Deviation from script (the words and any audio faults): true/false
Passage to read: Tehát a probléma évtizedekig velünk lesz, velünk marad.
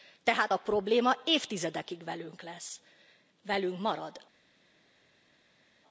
false